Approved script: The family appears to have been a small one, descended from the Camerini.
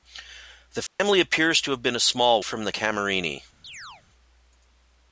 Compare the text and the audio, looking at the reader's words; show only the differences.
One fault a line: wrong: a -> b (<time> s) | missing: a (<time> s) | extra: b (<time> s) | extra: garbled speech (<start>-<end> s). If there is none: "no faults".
missing: one descended (2.4 s)